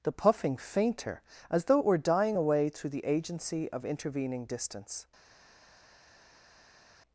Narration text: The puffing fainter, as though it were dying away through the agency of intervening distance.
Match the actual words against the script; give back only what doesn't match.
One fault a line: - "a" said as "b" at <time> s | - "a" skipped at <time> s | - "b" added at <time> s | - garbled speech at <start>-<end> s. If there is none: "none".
none